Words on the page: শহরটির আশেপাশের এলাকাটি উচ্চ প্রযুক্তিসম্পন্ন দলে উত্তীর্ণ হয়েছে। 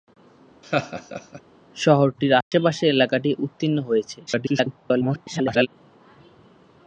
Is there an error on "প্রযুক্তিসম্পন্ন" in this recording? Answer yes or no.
yes